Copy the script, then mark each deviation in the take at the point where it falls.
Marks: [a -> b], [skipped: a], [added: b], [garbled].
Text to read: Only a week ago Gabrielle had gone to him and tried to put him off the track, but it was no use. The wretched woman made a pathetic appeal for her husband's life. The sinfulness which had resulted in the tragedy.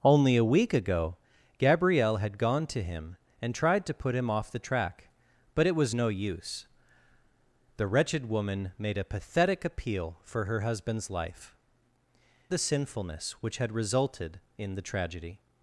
Only a week ago Gabrielle had gone to him and tried to put him off the track, but it was no use. The wretched woman made a pathetic appeal for her husband's life. The sinfulness which had resulted in the tragedy.